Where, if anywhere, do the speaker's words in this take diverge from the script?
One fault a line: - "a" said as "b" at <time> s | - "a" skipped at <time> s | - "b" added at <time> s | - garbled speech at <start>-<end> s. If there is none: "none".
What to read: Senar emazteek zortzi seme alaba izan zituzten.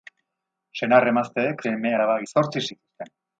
- "zortzi" skipped at 1.6 s
- "izan" said as "zortzi" at 2.3 s